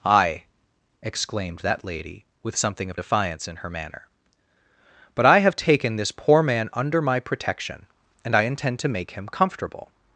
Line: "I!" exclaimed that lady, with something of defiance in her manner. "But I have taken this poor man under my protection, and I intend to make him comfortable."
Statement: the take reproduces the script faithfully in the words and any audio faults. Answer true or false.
true